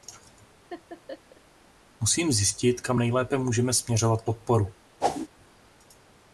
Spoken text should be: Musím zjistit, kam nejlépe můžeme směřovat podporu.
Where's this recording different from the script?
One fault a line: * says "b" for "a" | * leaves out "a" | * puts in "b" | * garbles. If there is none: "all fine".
all fine